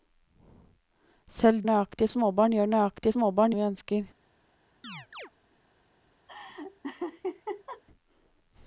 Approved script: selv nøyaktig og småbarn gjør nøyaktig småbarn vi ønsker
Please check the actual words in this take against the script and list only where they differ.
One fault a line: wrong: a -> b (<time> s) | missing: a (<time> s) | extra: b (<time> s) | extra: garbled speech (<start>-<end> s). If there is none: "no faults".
no faults